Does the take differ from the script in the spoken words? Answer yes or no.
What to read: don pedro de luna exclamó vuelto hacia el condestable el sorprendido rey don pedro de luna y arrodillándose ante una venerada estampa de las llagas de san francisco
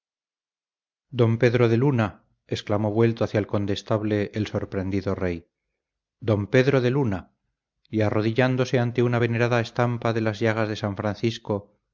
no